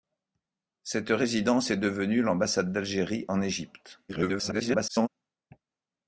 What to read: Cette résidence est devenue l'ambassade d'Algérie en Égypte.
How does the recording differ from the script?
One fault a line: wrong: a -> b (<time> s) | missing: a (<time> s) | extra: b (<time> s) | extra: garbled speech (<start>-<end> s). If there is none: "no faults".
extra: garbled speech (4.1-5.1 s)